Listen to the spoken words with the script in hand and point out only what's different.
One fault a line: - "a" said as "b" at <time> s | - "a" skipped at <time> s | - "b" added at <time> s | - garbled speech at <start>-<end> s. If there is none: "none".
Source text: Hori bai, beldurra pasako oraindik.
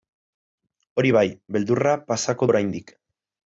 none